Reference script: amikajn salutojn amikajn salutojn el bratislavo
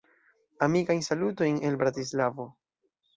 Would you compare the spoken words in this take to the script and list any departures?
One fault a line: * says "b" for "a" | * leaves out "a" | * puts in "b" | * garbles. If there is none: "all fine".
* leaves out "amikajn salutojn"